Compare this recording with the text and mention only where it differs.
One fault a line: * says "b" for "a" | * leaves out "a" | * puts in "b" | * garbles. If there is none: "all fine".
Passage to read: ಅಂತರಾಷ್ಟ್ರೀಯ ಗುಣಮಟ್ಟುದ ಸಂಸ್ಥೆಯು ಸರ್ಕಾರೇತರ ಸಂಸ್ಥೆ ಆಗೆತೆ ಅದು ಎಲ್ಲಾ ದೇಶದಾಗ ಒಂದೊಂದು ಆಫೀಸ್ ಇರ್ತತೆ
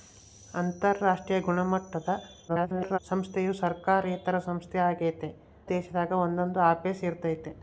* garbles
* leaves out "ಅದು ಎಲ್ಲಾ"